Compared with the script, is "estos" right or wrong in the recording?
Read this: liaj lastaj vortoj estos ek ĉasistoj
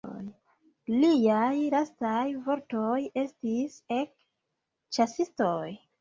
wrong